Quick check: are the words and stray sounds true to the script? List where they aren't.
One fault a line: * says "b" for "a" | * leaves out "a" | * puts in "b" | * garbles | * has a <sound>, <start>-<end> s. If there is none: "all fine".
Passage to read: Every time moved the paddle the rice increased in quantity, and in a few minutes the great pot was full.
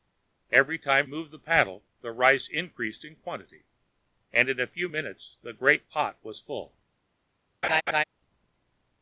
* has a laugh, 7.6-8.0 s